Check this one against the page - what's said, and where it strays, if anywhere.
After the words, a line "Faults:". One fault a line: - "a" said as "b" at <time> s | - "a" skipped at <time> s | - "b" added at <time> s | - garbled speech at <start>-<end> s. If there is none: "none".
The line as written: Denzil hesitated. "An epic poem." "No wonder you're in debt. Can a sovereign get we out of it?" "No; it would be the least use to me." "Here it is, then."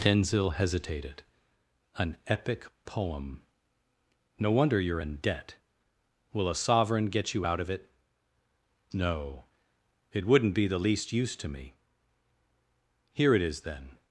Denzil hesitated. "An epic poem." "No wonder you're in debt. Will a sovereign get you out of it?" "No; it wouldn't be the least use to me." "Here it is, then."
Faults:
- "Can" said as "Will" at 6.3 s
- "we" said as "you" at 7.3 s
- "would" said as "wouldn't" at 10.2 s